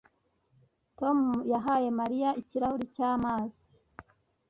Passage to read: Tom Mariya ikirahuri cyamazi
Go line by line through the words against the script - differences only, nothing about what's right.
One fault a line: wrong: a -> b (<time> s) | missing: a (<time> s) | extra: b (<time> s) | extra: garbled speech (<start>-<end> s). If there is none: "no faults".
extra: yahaye (1.5 s)